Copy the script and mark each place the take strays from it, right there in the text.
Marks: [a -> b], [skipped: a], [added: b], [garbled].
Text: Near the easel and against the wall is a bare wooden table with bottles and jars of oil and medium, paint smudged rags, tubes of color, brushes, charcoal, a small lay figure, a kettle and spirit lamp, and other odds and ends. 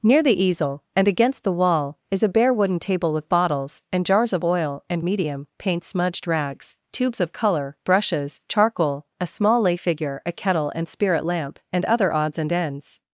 Near the easel and against the wall is a bare wooden table with bottles and jars of oil and medium, paint smudged rags, tubes of color, brushes, charcoal, a small lay figure, a kettle and spirit lamp, and other odds and ends.